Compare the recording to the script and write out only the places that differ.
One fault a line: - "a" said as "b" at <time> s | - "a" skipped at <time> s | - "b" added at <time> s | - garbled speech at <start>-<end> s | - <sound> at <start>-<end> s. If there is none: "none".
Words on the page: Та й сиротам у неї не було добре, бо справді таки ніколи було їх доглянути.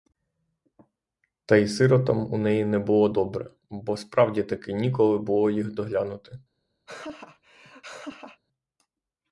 - laugh at 6.9-8.4 s